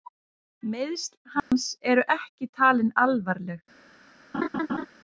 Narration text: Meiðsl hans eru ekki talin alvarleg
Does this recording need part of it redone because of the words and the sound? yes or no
yes